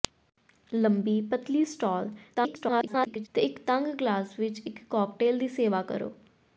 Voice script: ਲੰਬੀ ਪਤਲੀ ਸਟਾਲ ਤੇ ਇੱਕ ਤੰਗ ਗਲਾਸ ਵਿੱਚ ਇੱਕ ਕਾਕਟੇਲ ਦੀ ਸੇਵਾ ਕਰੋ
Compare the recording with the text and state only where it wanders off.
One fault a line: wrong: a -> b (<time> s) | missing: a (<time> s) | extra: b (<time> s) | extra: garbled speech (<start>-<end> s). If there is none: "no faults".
extra: garbled speech (2.3-3.3 s)